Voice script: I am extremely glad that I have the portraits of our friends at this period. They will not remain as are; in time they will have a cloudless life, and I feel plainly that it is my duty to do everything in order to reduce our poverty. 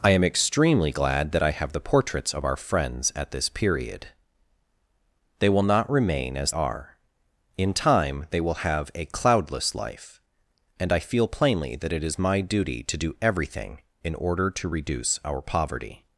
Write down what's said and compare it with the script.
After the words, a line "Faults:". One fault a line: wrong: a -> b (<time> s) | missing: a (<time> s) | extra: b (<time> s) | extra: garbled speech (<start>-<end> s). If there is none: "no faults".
I am extremely glad that I have the portraits of our friends at this period. They will not remain as are; in time they will have a cloudless life, and I feel plainly that it is my duty to do everything in order to reduce our poverty.
Faults:
no faults